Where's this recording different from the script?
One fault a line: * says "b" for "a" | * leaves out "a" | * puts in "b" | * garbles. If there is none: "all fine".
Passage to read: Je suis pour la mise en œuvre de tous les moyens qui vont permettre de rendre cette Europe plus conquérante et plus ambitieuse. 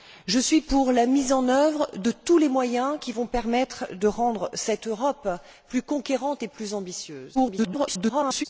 * garbles